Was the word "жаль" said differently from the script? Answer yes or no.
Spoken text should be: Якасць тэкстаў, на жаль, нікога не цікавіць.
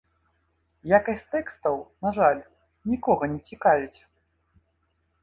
no